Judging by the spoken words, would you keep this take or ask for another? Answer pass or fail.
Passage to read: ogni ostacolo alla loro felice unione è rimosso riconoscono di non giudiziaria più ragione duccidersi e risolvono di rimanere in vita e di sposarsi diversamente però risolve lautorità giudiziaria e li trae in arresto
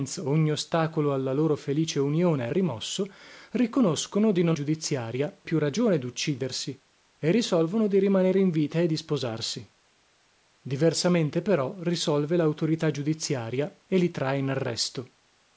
pass